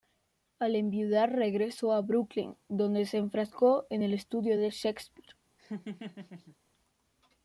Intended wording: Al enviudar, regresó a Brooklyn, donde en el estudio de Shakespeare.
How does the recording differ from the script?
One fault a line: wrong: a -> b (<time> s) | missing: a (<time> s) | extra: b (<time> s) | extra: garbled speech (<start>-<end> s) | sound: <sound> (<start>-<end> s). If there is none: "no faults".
extra: se enfrascó (3.0 s)
sound: laugh (5.6-6.6 s)